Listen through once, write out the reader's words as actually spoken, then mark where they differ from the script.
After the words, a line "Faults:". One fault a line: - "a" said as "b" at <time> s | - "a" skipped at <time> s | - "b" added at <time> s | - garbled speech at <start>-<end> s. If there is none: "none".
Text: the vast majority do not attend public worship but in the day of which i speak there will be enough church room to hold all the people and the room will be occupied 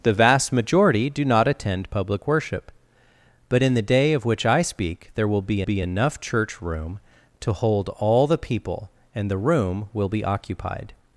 the vast majority do not attend public worship but in the day of which i speak there will be be enough church room to hold all the people and the room will be occupied
Faults:
- "be" added at 5.6 s